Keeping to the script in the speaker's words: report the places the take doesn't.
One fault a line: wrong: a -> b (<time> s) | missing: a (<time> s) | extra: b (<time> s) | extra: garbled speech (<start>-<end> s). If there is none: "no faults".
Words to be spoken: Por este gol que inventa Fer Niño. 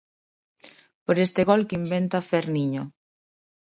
no faults